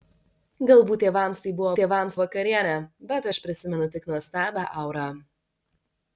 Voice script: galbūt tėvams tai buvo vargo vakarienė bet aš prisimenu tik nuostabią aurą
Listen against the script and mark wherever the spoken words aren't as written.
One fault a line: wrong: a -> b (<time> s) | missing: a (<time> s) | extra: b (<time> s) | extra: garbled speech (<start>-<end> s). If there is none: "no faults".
wrong: vargo -> tėvams (1.8 s)